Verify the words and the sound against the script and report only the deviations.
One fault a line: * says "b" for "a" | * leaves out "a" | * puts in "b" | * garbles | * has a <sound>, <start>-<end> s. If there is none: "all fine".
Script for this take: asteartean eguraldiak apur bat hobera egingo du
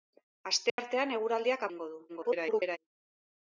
* has a dropout, 0.7-0.8 s
* leaves out "apur bat hobera"
* garbles